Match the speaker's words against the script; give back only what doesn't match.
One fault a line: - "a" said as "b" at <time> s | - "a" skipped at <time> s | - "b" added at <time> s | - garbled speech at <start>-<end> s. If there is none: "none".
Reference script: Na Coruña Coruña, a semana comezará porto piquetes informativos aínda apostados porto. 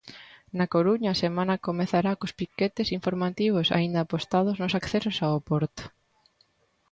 - "Coruña" skipped at 1.1 s
- "porto" said as "cos" at 2.2 s
- "nos accesos ao" added at 4.6 s